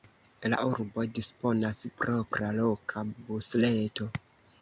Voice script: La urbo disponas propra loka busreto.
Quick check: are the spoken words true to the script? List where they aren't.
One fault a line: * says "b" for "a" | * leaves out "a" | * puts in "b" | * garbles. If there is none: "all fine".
all fine